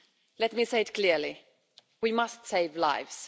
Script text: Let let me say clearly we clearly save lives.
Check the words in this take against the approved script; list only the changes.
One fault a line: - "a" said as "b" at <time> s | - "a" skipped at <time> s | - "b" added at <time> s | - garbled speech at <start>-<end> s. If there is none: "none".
- "let" skipped at 0.5 s
- "it" added at 0.8 s
- "clearly" said as "must" at 2.1 s